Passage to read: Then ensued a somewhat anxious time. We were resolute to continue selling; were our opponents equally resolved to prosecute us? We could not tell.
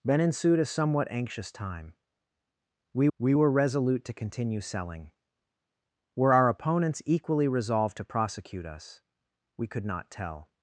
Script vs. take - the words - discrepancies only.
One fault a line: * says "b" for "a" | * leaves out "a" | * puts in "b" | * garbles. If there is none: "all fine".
* puts in "we"